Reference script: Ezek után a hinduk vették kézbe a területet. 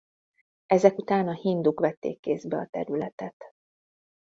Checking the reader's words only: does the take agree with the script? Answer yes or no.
yes